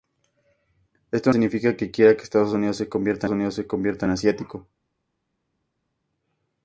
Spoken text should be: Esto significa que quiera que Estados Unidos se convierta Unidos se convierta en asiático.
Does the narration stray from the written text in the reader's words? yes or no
no